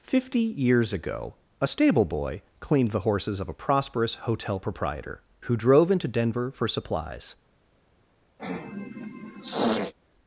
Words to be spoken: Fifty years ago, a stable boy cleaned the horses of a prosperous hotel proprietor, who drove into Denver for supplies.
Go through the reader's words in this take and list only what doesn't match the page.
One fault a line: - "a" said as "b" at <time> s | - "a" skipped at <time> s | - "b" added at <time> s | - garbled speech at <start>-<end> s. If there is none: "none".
none